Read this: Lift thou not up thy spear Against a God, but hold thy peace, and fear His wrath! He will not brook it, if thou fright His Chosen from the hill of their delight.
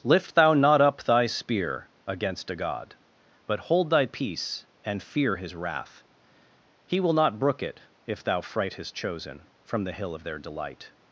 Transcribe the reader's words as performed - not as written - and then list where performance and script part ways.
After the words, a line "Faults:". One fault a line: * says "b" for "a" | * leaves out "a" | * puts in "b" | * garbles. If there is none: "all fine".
Lift thou not up thy spear Against a God, but hold thy peace, and fear His wrath! He will not brook it, if thou fright His Chosen from the hill of their delight.
Faults:
all fine